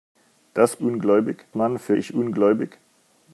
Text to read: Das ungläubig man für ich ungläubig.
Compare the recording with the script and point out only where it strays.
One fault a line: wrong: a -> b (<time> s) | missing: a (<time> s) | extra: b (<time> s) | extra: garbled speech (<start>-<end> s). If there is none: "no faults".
no faults